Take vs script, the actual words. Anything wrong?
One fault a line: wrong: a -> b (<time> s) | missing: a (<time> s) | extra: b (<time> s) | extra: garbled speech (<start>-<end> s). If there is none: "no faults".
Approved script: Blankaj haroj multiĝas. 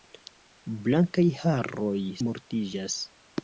no faults